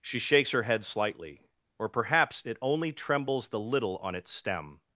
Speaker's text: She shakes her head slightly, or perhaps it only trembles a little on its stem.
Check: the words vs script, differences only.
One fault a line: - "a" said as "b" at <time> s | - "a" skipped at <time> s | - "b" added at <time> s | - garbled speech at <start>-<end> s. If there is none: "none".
- "a" said as "the" at 3.5 s